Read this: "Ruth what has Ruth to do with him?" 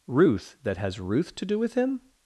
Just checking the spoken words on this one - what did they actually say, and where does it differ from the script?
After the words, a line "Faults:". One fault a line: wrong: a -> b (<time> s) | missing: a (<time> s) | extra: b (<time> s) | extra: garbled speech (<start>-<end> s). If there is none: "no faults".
"Ruth that has Ruth to do with him?"
Faults:
wrong: what -> that (0.6 s)